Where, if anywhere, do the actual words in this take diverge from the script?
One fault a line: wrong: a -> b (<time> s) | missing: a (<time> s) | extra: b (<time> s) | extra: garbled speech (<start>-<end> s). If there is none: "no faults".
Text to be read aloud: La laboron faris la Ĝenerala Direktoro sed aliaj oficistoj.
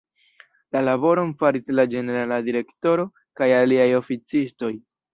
wrong: sed -> kaj (3.4 s)